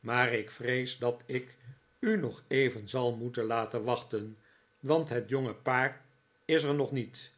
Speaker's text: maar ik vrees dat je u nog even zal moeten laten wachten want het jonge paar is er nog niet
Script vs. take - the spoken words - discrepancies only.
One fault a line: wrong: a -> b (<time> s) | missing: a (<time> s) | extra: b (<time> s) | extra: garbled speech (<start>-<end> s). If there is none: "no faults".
wrong: je -> ik (1.2 s)